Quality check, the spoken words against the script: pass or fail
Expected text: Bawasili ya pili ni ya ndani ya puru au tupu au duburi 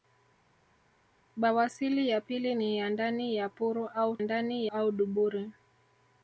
fail